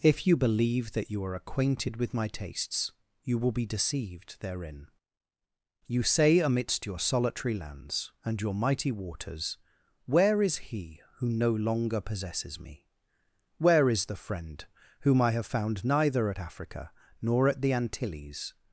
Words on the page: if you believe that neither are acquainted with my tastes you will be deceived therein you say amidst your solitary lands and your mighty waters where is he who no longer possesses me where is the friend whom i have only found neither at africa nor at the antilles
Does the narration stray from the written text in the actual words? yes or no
yes